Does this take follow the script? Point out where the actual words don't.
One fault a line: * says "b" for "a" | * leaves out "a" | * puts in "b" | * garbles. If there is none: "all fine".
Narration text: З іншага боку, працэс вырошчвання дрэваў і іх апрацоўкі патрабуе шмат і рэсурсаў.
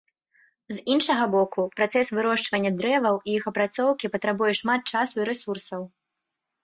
* puts in "часу"